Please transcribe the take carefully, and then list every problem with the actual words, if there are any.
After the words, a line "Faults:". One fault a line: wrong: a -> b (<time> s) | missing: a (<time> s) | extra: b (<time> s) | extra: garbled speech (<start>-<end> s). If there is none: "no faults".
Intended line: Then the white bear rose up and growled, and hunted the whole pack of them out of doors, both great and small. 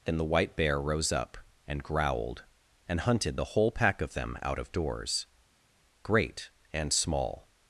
Then the white bear rose up and growled, and hunted the whole pack of them out of doors, great and small.
Faults:
missing: both (5.3 s)